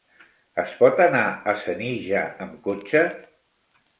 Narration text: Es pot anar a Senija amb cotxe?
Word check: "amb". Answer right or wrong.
right